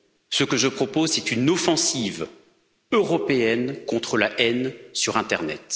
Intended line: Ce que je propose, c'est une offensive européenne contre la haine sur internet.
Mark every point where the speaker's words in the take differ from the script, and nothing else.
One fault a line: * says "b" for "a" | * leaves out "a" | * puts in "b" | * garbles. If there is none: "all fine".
all fine